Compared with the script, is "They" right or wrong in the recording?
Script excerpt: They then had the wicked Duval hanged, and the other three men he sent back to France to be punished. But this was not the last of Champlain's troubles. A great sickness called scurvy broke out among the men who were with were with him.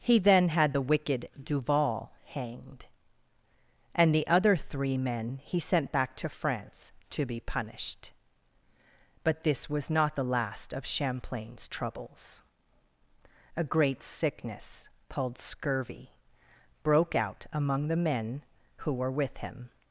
wrong